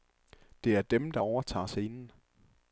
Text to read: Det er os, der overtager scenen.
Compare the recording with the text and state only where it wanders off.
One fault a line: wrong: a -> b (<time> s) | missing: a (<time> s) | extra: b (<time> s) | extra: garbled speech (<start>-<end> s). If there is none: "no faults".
wrong: os -> dem (0.8 s)